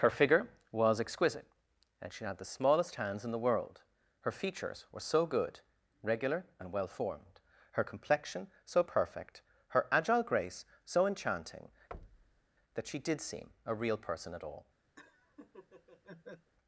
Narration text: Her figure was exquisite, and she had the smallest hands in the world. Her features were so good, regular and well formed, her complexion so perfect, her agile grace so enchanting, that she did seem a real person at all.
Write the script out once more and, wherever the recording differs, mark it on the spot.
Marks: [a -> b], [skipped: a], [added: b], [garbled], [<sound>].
Her figure was exquisite, and she had the smallest hands in the world. Her features were so good, regular and well formed, her complexion so perfect, her agile grace so enchanting, [thud] that she did seem a real person at all. [laugh]